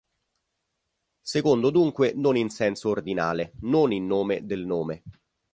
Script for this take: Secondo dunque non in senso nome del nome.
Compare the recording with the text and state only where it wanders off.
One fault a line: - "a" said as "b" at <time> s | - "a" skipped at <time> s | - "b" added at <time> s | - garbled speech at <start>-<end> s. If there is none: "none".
- "ordinale non in" added at 2.9 s